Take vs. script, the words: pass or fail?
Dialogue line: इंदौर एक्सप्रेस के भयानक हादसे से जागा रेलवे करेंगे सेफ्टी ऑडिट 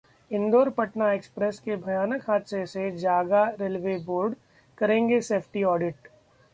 fail